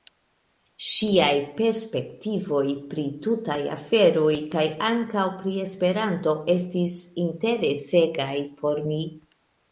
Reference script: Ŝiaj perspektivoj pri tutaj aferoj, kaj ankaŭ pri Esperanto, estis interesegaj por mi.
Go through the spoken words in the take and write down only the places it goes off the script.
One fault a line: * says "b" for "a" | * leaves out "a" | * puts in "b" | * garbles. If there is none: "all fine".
all fine